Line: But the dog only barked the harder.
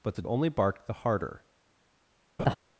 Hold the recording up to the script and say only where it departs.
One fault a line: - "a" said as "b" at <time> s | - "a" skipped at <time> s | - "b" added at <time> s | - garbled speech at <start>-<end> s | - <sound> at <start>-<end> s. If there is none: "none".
- "dog" skipped at 0.2 s
- laugh at 2.4-2.6 s